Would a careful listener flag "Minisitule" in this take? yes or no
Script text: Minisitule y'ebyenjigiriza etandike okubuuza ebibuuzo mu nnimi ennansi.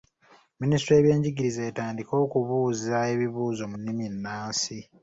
no